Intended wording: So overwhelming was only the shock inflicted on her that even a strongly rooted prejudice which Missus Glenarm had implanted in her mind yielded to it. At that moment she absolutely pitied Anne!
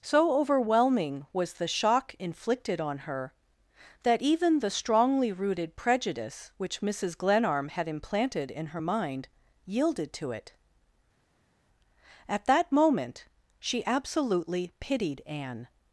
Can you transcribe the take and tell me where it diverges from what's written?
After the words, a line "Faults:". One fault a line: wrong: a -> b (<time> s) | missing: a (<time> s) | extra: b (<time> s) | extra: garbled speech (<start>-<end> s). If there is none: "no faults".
So overwhelming was the shock inflicted on her that even the strongly rooted prejudice which Missus Glenarm had implanted in her mind yielded to it. At that moment she absolutely pitied Anne!
Faults:
missing: only (1.5 s)
wrong: a -> the (4.6 s)